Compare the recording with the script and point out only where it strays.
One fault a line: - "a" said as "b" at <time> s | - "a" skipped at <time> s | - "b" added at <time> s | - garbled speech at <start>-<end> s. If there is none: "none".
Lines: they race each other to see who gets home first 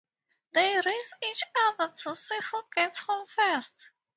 none